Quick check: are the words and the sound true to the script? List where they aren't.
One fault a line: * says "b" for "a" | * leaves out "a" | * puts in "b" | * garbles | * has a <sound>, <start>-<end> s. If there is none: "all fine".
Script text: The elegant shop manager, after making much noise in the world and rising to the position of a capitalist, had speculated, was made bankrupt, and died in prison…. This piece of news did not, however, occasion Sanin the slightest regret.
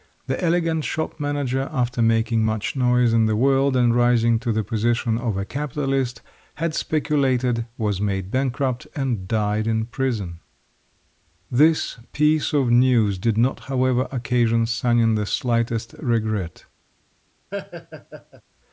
* has a laugh, 17.5-18.4 s